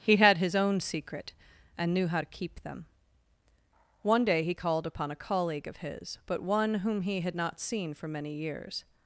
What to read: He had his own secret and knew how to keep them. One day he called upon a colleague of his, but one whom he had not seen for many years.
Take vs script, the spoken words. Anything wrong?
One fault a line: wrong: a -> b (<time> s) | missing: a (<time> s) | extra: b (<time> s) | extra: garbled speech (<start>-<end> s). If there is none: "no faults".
no faults